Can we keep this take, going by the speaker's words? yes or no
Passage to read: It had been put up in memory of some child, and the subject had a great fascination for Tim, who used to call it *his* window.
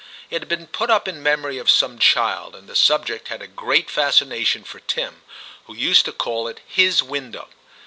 yes